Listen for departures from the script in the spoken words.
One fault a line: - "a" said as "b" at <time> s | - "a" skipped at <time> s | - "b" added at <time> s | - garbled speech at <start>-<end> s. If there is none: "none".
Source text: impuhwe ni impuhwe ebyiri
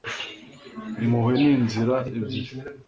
- "impuhwe" said as "inzira" at 1.6 s